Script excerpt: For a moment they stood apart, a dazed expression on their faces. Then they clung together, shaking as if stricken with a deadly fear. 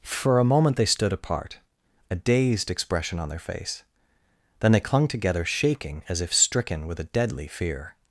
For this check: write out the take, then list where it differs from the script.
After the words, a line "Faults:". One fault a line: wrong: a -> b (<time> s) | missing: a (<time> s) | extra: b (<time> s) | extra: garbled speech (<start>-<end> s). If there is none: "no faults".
For a moment they stood apart, a dazed expression on their face. Then they clung together, shaking as if stricken with a deadly fear.
Faults:
wrong: faces -> face (3.4 s)